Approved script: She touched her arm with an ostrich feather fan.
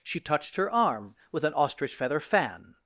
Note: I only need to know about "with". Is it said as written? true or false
true